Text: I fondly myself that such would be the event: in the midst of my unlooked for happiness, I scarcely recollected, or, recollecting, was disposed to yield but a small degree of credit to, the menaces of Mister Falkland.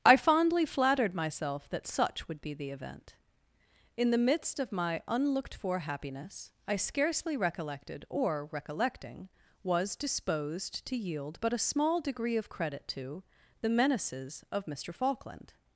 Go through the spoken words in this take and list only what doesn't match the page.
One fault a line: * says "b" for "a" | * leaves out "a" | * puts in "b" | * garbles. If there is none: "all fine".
* puts in "flattered"